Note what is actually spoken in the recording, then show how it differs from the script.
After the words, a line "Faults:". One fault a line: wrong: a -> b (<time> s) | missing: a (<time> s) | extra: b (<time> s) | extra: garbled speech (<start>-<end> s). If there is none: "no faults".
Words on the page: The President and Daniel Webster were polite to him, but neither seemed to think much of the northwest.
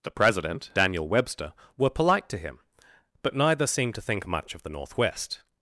The President Daniel Webster were polite to him, but neither seemed to think much of the northwest.
Faults:
missing: and (0.7 s)